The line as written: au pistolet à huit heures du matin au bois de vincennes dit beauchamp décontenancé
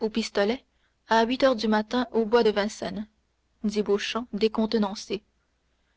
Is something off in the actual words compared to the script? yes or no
no